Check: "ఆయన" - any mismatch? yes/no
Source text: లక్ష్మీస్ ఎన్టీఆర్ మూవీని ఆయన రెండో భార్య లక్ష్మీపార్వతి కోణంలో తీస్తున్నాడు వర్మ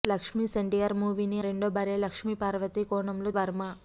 yes